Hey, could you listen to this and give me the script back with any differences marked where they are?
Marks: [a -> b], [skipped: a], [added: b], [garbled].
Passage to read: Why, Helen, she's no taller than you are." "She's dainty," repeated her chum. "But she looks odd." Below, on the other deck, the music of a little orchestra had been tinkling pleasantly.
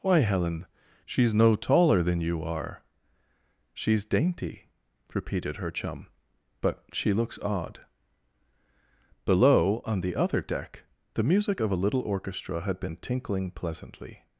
Why, Helen, she's no taller than you are." "She's dainty," repeated her chum. "But she looks odd." Below, on the other deck, the music of a little orchestra had been tinkling pleasantly.